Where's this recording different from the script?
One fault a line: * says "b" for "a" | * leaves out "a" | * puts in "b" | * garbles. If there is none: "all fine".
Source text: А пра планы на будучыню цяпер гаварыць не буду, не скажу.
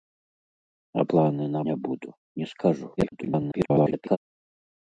* leaves out "пра"
* leaves out "будучыню цяпер гаварыць"
* garbles